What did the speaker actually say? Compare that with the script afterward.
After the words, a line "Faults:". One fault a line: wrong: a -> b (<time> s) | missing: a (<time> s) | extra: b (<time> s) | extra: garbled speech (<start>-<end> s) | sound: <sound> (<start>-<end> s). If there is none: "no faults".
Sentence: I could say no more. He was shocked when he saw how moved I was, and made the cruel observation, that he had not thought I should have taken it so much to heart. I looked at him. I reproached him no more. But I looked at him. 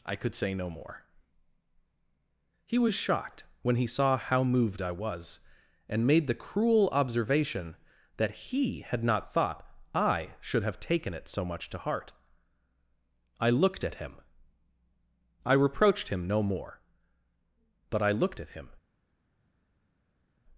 I could say no more. He was shocked when he saw how moved I was, and made the cruel observation, that he had not thought I should have taken it so much to heart. I looked at him. I reproached him no more. But I looked at him.
Faults:
no faults